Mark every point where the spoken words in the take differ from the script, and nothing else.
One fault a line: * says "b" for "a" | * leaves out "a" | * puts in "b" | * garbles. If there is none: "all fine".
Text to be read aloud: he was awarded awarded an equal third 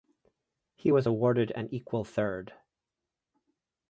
* leaves out "awarded"